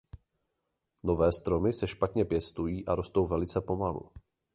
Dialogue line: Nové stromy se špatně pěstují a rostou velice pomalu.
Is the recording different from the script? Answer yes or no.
no